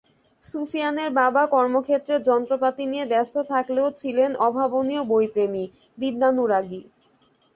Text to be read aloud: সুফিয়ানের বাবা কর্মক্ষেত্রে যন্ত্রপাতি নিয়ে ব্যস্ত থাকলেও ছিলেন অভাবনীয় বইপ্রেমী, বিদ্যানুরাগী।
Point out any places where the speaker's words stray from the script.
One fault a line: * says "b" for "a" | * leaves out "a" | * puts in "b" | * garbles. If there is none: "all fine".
all fine